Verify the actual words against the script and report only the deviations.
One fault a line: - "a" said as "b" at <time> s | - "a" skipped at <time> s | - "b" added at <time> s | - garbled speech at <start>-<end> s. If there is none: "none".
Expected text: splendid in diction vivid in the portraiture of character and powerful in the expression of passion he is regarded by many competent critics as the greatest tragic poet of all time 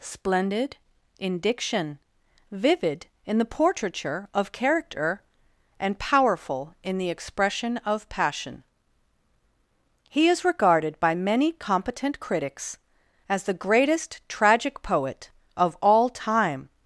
none